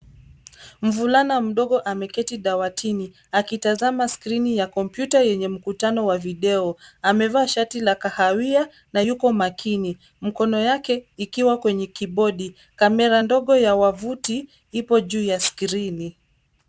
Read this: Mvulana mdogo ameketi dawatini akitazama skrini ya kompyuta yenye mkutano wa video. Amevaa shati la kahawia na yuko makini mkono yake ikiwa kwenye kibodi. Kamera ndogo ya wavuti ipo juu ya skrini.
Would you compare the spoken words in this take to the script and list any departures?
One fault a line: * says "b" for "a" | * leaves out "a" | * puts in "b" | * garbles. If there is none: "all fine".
all fine